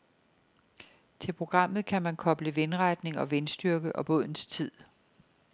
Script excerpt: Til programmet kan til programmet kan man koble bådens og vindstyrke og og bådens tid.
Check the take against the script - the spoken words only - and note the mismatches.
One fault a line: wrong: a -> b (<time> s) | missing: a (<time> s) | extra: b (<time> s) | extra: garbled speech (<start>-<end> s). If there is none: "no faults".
missing: til programmet kan (2.0 s)
wrong: bådens -> vindretning (2.5 s)
missing: og (4.1 s)